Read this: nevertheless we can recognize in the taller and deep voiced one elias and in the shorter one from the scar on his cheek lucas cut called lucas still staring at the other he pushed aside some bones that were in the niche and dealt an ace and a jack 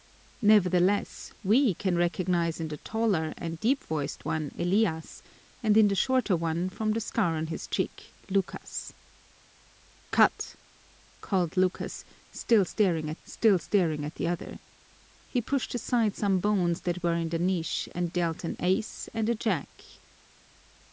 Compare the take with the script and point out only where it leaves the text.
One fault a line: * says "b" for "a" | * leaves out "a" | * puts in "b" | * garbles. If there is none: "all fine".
* puts in "still staring at"